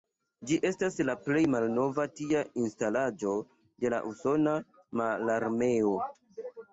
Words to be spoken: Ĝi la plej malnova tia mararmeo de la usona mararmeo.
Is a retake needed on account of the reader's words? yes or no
yes